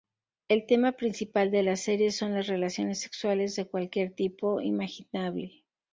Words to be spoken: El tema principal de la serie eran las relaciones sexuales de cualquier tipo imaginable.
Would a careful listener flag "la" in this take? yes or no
no